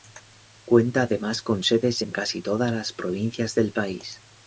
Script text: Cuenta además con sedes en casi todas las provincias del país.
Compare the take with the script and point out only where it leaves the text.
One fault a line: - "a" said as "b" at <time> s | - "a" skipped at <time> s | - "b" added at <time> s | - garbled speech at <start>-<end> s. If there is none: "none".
none